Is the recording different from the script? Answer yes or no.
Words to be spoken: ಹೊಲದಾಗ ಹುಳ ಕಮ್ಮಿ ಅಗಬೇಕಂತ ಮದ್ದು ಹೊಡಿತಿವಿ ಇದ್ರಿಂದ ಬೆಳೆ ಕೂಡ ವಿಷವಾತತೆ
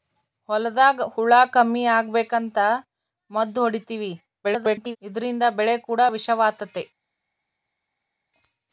yes